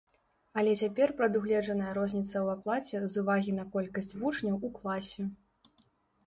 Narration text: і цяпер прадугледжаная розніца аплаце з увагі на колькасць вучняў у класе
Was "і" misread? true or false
true